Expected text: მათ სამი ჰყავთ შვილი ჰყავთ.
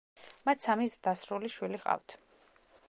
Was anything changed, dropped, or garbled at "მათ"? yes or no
no